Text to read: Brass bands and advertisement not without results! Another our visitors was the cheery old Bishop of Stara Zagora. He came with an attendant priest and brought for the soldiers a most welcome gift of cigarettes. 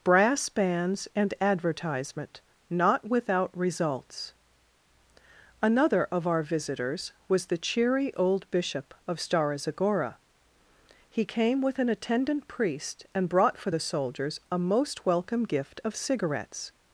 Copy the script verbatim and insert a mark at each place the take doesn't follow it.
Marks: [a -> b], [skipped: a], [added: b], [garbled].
Brass bands and advertisement not without results! Another [added: of] our visitors was the cheery old Bishop of Stara Zagora. He came with an attendant priest and brought for the soldiers a most welcome gift of cigarettes.